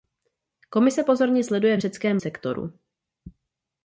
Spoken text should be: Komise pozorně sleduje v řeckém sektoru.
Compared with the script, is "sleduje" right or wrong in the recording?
right